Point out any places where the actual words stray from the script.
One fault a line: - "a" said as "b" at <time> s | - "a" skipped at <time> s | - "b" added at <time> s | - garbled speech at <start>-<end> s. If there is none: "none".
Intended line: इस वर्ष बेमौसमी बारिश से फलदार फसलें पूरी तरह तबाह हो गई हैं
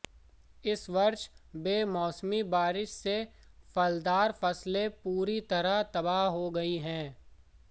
none